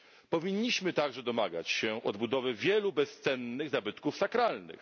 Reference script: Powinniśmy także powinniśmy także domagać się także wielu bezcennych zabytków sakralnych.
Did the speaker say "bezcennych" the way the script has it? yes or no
yes